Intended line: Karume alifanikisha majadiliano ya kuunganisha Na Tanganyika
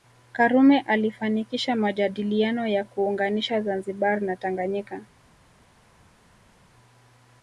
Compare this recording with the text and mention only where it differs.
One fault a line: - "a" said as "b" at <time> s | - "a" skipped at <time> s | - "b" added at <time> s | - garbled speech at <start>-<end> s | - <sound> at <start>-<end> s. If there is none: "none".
- "Zanzibar" added at 3.6 s